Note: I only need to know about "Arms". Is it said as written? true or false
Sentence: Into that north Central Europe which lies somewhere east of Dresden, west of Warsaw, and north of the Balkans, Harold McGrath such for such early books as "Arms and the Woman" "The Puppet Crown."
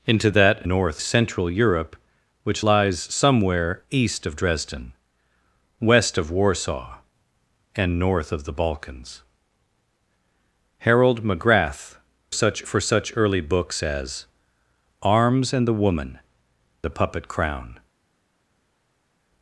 true